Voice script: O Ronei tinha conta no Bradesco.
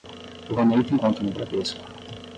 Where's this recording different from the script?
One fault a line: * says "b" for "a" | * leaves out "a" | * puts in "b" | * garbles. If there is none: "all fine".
* says "tem" for "tinha"